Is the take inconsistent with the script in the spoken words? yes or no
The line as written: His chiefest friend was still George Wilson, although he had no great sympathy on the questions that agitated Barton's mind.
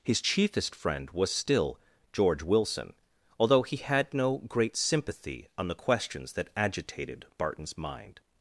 no